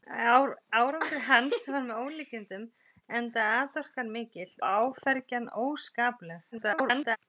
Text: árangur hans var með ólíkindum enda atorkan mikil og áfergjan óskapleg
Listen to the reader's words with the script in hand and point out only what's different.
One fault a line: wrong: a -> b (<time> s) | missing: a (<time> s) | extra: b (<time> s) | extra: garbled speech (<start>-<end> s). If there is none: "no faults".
missing: og (4.5 s)
extra: garbled speech (6.5-7.2 s)